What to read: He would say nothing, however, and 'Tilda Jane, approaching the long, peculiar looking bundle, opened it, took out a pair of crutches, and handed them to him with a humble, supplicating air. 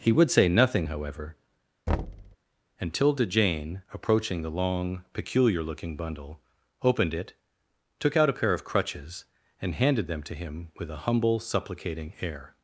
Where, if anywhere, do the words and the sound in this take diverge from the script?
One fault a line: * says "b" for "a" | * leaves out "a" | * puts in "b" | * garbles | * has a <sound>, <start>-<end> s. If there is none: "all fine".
* has a thud, 1.9-2.4 s